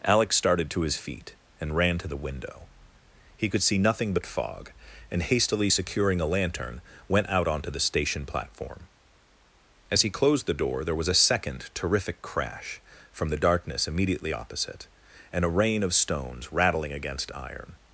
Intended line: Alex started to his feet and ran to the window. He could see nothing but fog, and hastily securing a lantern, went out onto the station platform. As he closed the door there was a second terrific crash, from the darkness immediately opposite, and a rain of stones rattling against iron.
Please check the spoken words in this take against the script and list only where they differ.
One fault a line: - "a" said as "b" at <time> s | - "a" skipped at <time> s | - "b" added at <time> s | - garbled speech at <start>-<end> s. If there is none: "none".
none